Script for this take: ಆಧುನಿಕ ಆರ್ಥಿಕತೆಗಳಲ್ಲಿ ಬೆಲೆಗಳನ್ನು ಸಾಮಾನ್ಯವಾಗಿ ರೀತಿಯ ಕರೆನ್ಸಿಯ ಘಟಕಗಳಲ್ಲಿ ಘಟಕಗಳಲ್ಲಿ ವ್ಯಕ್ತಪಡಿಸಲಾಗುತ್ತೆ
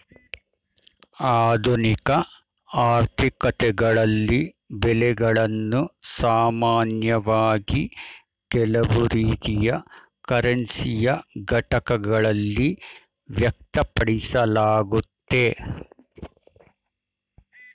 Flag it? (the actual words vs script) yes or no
yes